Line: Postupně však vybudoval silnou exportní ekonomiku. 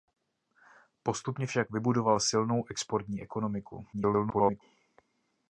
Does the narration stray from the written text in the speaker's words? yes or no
yes